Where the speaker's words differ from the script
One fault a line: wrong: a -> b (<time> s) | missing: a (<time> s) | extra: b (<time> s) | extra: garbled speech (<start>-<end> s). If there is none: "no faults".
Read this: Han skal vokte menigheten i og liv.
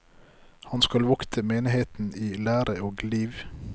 extra: lære (2.3 s)